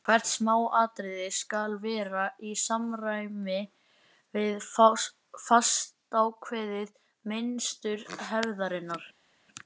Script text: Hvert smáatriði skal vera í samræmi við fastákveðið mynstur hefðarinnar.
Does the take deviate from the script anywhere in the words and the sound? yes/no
no